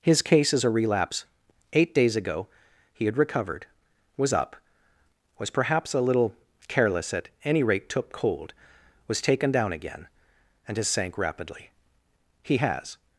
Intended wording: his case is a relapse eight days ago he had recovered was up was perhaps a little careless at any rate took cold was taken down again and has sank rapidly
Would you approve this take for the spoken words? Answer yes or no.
no